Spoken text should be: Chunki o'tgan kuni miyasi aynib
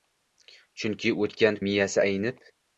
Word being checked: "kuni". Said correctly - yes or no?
no